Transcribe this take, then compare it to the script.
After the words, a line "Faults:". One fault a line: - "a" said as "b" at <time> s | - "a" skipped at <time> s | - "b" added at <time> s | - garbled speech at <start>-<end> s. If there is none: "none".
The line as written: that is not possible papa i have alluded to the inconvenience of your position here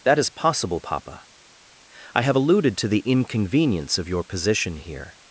that is possible papa i have alluded to the inconvenience of your position here
Faults:
- "not" skipped at 0.3 s